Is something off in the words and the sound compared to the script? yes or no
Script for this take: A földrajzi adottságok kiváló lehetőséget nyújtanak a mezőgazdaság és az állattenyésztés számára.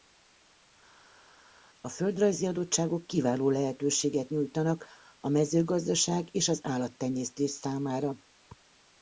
no